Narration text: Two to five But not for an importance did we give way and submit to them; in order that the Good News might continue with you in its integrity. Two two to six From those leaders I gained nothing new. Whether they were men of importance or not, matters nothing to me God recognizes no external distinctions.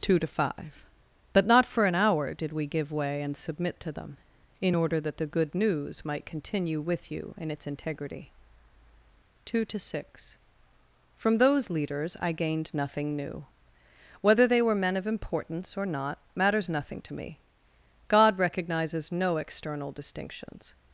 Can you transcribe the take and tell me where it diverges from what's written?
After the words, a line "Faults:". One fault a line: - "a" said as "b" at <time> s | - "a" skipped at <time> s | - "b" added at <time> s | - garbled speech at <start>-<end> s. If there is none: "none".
Two to five But not for an hour did we give way and submit to them; in order that the Good News might continue with you in its integrity. Two to six From those leaders I gained nothing new. Whether they were men of importance or not, matters nothing to me God recognizes no external distinctions.
Faults:
- "importance" said as "hour" at 1.9 s
- "two" skipped at 9.7 s